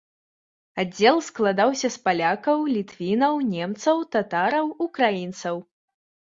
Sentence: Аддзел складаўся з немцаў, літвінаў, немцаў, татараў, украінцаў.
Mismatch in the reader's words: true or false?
true